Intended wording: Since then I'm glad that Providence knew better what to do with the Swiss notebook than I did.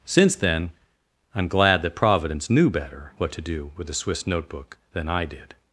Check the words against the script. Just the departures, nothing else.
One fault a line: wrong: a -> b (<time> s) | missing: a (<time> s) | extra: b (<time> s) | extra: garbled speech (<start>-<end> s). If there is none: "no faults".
no faults